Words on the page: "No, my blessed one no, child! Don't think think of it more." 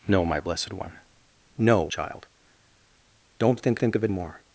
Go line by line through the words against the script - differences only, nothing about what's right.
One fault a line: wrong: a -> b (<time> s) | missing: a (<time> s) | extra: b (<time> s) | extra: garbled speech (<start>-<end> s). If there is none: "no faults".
no faults